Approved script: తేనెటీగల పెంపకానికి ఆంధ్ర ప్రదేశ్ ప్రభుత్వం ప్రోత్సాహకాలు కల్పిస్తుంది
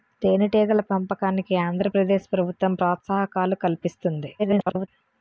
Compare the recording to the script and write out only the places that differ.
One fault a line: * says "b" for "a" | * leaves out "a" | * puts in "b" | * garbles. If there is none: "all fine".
* garbles